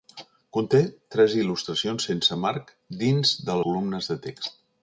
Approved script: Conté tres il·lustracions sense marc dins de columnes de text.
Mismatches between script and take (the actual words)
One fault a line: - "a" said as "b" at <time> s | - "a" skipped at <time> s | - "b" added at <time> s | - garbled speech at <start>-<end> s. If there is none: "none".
none